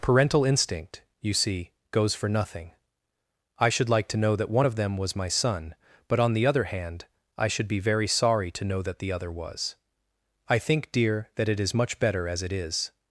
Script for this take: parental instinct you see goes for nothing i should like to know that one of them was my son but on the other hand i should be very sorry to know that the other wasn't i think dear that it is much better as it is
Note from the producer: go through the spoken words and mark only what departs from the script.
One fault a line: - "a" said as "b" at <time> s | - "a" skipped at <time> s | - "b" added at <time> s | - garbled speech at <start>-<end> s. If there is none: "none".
- "wasn't" said as "was" at 9.3 s